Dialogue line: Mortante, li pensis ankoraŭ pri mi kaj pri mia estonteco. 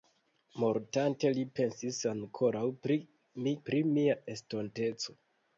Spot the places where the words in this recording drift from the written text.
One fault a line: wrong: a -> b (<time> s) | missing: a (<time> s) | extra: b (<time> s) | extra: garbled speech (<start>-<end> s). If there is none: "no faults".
missing: kaj (3.6 s)